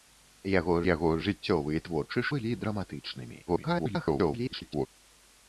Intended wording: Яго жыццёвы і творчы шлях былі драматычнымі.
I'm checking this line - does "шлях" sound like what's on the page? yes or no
no